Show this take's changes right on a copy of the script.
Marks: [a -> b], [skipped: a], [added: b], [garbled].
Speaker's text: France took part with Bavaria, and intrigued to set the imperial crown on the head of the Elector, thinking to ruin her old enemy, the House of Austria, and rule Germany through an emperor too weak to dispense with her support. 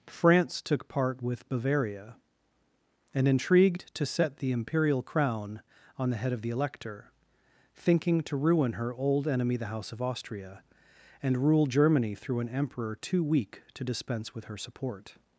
France took part with Bavaria, and intrigued to set the imperial crown on the head of the Elector, thinking to ruin her old enemy, the House of Austria, and rule Germany through an emperor too weak to dispense with her support.